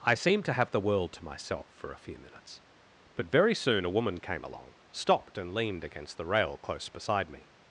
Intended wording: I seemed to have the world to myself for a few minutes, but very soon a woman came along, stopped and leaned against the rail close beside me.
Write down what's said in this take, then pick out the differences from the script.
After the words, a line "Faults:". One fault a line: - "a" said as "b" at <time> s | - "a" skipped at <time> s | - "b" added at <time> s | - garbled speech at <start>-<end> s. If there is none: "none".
I seemed to have the world to myself for a few minutes, but very soon a woman came along, stopped and leaned against the rail close beside me.
Faults:
none